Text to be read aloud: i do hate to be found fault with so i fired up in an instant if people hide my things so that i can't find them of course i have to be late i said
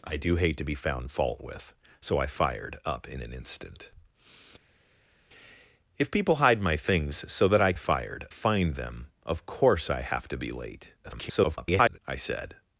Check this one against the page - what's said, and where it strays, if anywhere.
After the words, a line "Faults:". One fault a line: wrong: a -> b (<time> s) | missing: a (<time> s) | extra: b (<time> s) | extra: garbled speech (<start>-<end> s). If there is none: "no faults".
i do hate to be found fault with so i fired up in an instant if people hide my things so that i fired find them of course i have to be late [garbled] i said
Faults:
wrong: can't -> fired (7.7 s)
extra: garbled speech (11.0-12.0 s)